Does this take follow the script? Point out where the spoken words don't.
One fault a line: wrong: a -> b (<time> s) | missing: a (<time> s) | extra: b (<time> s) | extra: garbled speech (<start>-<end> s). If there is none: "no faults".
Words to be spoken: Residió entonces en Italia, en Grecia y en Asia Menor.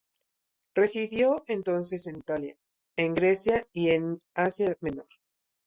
no faults